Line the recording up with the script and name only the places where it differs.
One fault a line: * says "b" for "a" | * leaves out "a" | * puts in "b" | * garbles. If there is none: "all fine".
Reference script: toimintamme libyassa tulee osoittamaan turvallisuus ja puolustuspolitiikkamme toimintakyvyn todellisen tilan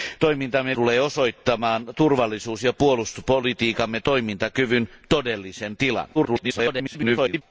* leaves out "libyassa"
* garbles